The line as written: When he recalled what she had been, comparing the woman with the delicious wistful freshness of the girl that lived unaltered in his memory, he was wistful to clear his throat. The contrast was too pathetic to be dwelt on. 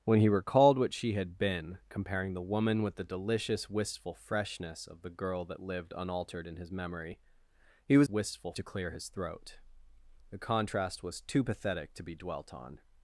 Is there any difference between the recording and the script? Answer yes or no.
no